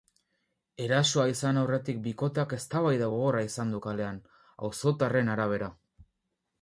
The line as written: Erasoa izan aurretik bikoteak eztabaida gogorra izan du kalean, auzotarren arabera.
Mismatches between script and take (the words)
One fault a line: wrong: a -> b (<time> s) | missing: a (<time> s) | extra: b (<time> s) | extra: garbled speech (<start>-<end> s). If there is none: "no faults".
no faults